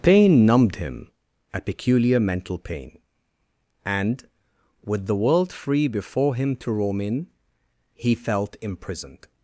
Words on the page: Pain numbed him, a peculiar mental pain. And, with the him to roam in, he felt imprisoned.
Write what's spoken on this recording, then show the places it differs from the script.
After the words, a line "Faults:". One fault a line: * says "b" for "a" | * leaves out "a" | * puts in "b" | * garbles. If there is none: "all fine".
Pain numbed him, a peculiar mental pain. And, with the world free before him to roam in, he felt imprisoned.
Faults:
* puts in "world free before"